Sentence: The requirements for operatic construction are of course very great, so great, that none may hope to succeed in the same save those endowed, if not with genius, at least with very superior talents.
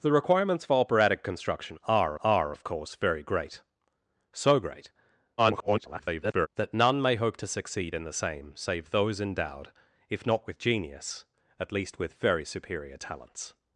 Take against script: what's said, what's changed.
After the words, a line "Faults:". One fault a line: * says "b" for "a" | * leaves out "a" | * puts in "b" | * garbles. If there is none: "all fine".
The requirements for operatic construction are are of course very great, so great, [garbled] that none may hope to succeed in the same save those endowed, if not with genius, at least with very superior talents.
Faults:
* puts in "are"
* garbles